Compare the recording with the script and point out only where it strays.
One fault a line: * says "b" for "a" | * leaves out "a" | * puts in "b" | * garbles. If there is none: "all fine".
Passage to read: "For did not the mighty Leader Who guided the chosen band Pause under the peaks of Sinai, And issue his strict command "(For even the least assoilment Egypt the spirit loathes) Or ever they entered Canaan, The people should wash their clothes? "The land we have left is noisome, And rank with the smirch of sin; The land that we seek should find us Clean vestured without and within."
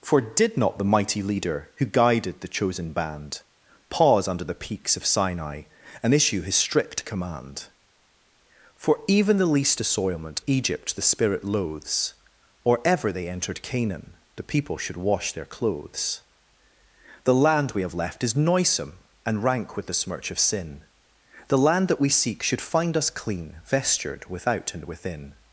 all fine